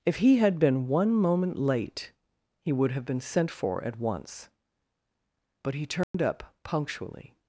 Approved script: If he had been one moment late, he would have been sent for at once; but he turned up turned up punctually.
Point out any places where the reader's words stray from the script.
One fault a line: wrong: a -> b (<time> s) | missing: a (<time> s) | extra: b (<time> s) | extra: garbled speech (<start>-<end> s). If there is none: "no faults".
missing: turned up (6.5 s)